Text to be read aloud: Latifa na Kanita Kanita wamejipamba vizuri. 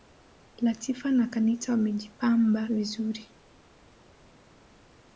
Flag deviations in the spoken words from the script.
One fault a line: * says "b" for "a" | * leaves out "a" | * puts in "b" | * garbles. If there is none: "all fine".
* leaves out "Kanita"